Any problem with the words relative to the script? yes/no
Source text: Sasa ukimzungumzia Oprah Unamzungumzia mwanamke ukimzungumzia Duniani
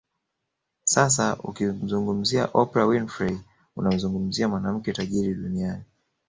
yes